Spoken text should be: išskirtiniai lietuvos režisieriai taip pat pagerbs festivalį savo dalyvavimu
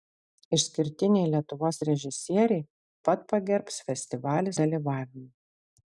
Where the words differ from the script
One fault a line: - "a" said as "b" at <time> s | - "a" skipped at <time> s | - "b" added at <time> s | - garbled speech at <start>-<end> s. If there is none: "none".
- "taip" skipped at 2.6 s
- "savo" skipped at 4.6 s